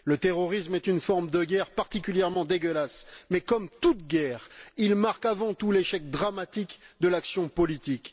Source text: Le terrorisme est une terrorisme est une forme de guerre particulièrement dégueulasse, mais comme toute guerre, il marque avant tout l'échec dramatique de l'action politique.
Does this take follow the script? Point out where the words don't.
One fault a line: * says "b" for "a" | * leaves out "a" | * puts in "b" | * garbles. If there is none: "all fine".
* leaves out "terrorisme est une"